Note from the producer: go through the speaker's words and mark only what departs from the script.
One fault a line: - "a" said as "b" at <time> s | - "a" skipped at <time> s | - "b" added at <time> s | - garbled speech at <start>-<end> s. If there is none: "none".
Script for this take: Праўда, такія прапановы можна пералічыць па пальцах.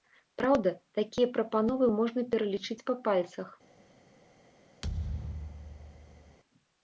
none